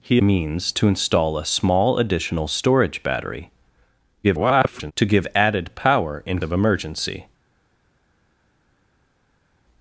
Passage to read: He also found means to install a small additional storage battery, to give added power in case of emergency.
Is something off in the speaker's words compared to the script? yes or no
yes